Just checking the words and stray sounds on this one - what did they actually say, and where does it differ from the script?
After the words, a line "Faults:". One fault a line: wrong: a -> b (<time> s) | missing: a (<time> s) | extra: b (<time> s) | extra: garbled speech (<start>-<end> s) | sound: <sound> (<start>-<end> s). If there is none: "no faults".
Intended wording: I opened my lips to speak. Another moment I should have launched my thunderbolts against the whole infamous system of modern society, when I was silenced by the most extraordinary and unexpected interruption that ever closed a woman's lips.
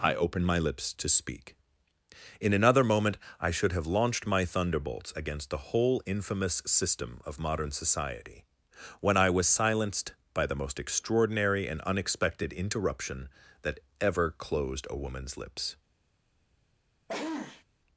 I opened my lips to speak. In another moment I should have launched my thunderbolts against the whole infamous system of modern society, when I was silenced by the most extraordinary and unexpected interruption that ever closed a woman's lips.
Faults:
extra: In (2.4 s)
sound: sneeze (17.1-17.6 s)